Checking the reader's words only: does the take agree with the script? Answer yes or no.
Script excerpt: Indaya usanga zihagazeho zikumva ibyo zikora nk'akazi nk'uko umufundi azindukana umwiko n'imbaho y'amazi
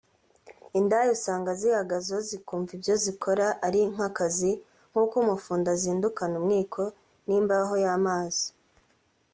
no